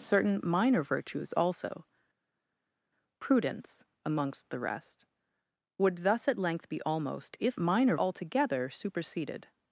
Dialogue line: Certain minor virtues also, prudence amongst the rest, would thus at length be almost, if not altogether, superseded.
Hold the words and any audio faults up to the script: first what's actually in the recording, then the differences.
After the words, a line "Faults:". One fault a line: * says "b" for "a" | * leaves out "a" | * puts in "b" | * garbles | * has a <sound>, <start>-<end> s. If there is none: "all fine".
Certain minor virtues also, prudence amongst the rest, would thus at length be almost, if minor altogether, superseded.
Faults:
* says "minor" for "not"